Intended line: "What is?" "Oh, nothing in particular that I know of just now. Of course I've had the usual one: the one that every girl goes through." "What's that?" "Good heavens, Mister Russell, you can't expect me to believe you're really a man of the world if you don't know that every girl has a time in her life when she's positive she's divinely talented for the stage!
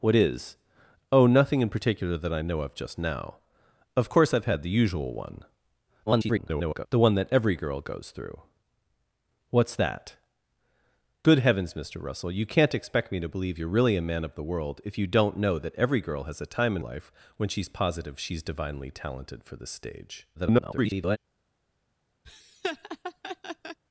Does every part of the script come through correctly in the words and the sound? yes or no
no